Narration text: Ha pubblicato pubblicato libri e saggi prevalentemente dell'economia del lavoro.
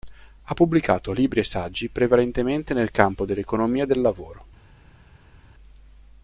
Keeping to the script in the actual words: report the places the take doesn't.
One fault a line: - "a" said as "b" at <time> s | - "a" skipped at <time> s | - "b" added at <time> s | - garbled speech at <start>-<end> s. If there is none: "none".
- "pubblicato" skipped at 1.1 s
- "nel campo" added at 2.7 s